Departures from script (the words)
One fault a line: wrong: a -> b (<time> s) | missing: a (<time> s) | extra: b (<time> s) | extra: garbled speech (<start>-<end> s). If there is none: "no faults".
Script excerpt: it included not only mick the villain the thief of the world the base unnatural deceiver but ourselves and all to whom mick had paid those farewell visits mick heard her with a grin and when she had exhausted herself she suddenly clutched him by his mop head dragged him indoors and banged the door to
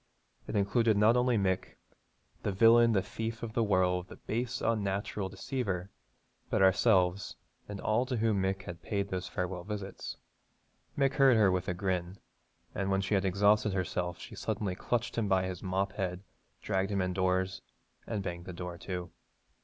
no faults